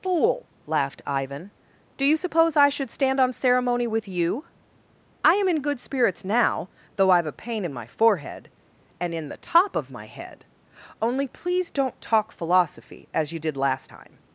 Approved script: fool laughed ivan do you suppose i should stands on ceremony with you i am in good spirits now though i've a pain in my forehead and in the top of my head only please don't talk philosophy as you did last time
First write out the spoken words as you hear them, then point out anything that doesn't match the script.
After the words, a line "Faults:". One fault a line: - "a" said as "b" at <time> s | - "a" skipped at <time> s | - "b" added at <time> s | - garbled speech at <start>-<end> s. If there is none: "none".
fool laughed ivan do you suppose i should stand on ceremony with you i am in good spirits now though i've a pain in my forehead and in the top of my head only please don't talk philosophy as you did last time
Faults:
- "stands" said as "stand" at 2.9 s